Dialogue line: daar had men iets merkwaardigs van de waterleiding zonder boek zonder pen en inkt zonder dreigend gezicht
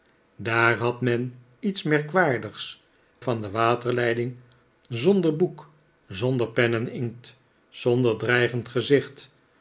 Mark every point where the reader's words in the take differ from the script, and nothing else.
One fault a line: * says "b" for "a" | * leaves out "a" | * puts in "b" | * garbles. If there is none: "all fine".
all fine